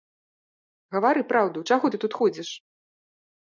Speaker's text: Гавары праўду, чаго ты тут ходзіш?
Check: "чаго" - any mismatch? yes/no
no